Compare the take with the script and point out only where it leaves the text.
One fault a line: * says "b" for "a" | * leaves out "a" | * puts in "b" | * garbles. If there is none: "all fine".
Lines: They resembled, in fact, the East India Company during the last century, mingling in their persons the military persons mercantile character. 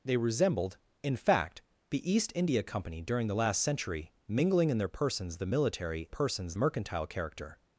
all fine